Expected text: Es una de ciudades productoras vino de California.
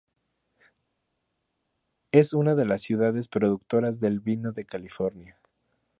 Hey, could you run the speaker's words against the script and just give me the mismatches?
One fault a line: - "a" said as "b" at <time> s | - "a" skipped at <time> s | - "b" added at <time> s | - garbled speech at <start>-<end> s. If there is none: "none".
- "las" added at 2.6 s
- "del" added at 4.0 s